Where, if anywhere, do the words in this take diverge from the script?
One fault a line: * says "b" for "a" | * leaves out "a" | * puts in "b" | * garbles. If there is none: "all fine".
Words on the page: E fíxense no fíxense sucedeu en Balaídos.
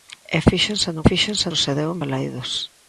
all fine